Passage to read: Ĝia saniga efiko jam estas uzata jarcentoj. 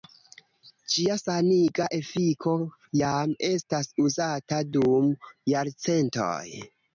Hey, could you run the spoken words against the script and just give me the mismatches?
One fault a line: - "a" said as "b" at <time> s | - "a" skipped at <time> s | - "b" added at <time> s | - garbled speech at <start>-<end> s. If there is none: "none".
- "dum" added at 4.8 s